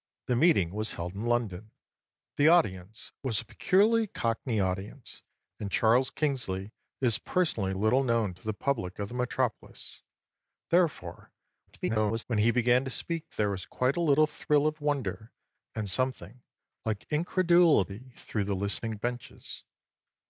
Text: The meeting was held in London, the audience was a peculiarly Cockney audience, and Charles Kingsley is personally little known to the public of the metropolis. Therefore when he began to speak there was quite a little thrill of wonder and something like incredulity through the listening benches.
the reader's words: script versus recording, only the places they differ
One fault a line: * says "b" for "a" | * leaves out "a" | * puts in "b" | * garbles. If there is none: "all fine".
* garbles